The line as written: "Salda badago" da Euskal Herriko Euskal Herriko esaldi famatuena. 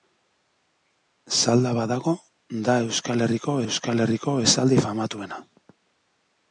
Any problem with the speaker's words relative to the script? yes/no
no